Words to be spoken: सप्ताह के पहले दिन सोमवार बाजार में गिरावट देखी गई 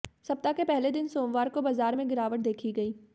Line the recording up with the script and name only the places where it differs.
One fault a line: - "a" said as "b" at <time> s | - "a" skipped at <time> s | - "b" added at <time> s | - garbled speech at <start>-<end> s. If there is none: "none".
- "को" added at 1.5 s